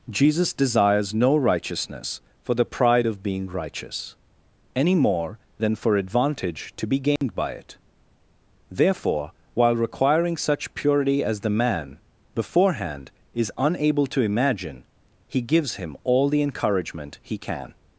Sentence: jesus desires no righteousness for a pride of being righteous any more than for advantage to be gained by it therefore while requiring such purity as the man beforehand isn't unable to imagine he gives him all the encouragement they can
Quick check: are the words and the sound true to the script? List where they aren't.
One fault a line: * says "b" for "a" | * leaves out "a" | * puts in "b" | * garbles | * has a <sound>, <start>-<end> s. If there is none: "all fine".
* says "the" for "a"
* has a dropout, 7.2-7.2 s
* says "is" for "isn't"
* says "he" for "they"